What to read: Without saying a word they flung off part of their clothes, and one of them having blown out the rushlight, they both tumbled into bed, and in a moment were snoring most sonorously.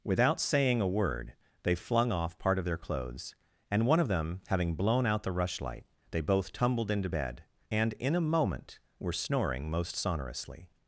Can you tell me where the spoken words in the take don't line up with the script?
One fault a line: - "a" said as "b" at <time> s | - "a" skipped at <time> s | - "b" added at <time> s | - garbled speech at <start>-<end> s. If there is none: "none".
none